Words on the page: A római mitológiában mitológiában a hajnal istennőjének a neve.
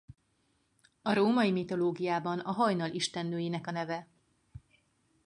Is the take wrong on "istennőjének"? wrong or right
right